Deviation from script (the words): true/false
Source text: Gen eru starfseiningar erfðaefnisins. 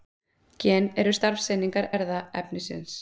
false